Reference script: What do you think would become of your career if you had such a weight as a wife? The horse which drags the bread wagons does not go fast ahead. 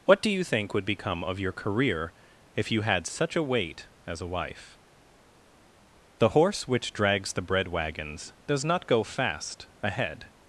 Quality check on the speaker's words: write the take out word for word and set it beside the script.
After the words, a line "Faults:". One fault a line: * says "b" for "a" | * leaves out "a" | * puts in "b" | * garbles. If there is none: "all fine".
What do you think would become of your career if you had such a weight as a wife? The horse which drags the bread wagons does not go fast ahead.
Faults:
all fine